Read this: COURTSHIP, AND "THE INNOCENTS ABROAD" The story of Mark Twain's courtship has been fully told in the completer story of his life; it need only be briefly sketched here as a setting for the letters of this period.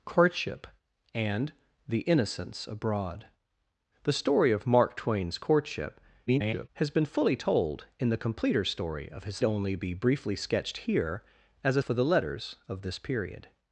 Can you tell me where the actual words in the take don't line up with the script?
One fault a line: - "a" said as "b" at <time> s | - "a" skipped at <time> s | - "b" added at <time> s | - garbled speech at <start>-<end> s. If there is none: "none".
- garbled speech at 6.3-6.7 s
- "life it need" skipped at 9.4 s
- "setting" skipped at 11.8 s